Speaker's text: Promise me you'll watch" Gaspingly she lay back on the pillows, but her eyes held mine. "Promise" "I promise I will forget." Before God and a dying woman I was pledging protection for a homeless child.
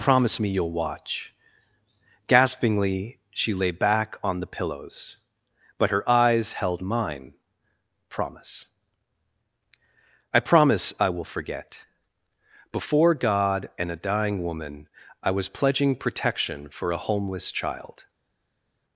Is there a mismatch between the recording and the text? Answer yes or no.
no